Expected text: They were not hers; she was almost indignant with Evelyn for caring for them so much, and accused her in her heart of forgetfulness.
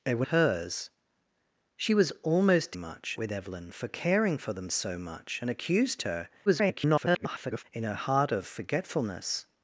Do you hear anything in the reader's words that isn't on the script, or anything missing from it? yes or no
yes